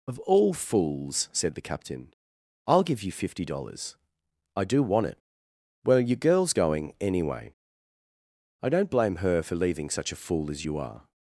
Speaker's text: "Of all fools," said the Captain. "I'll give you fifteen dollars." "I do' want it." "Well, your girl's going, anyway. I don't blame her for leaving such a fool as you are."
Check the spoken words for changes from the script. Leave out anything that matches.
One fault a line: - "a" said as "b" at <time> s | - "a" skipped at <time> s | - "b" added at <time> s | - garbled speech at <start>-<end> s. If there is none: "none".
- "fifteen" said as "fifty" at 3.1 s